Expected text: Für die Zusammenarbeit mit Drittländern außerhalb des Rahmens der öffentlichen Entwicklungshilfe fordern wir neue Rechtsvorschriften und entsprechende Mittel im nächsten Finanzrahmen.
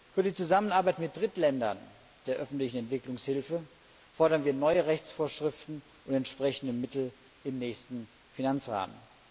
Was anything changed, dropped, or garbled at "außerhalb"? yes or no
yes